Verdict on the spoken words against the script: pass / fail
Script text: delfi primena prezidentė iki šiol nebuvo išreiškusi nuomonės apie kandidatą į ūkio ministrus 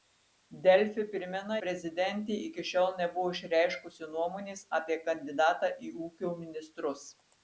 pass